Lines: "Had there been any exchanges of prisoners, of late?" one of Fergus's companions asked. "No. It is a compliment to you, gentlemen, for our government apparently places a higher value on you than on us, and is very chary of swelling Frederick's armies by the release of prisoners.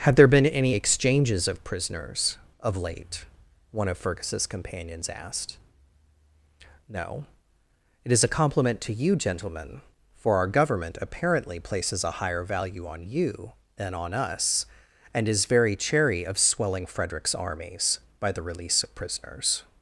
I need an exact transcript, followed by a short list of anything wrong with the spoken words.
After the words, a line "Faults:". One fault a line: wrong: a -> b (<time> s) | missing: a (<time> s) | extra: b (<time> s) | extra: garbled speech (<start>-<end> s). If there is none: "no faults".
"Had there been any exchanges of prisoners, of late?" one of Fergus's companions asked. "No. It is a compliment to you, gentlemen, for our government apparently places a higher value on you than on us, and is very chary of swelling Frederick's armies by the release of prisoners.
Faults:
no faults